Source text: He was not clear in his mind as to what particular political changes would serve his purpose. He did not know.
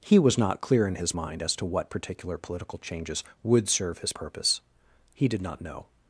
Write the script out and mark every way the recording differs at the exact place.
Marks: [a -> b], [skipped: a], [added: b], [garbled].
He was not clear in his mind as to what particular political changes would serve his purpose. He did not know.